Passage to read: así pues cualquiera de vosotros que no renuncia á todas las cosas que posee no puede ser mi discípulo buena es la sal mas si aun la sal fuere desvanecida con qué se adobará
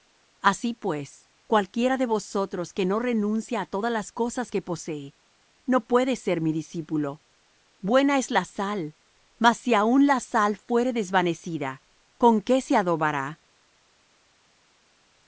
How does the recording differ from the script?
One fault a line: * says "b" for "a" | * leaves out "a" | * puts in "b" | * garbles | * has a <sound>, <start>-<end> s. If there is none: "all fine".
all fine